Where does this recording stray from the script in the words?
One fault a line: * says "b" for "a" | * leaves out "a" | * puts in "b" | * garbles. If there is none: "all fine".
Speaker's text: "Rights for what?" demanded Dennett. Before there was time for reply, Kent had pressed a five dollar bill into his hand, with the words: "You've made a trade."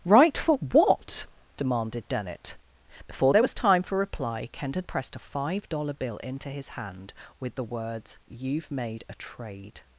* says "Right" for "Rights"